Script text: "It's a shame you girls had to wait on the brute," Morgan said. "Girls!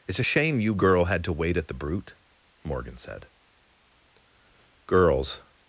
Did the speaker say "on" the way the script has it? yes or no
no